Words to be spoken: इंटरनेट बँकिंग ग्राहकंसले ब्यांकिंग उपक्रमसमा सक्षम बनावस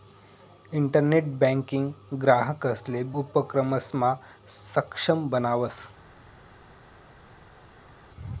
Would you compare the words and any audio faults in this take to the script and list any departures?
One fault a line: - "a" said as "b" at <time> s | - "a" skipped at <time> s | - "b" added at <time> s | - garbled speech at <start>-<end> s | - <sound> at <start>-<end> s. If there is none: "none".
- "ब्यांकिंग" skipped at 3.0 s